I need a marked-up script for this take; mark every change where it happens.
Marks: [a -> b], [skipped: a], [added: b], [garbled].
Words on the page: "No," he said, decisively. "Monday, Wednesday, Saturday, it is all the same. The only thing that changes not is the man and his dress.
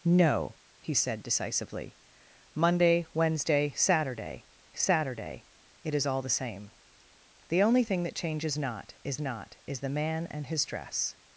"No," he said, decisively. "Monday, Wednesday, Saturday, [added: Saturday] it is all the same. The only thing that changes not is [added: not is] the man and his dress.